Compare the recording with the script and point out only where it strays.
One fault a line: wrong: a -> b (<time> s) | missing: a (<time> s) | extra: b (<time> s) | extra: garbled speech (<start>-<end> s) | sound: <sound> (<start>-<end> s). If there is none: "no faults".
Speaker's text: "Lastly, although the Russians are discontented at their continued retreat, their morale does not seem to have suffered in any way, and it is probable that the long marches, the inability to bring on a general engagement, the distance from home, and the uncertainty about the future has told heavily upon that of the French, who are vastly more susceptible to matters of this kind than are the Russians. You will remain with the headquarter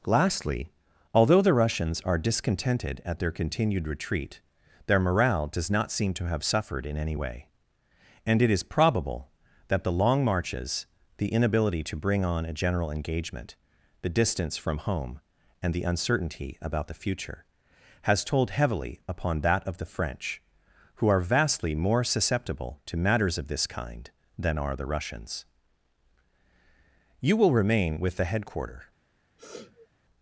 sound: sniff (29.4-29.9 s)